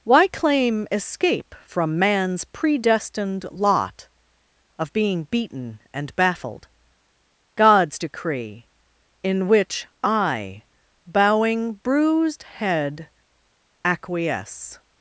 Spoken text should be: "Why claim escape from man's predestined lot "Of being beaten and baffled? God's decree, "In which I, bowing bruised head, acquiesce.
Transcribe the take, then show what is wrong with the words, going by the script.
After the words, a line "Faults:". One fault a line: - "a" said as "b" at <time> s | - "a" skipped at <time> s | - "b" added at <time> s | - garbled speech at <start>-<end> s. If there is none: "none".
"Why claim escape from man's predestined lot "Of being beaten and baffled? God's decree, "In which I, bowing bruised head, acquiesce.
Faults:
none